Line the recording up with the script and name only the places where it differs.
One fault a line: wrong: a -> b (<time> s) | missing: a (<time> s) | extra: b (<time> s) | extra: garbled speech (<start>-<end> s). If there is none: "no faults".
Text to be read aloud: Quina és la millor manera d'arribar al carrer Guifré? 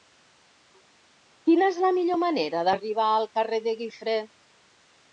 extra: de (3.7 s)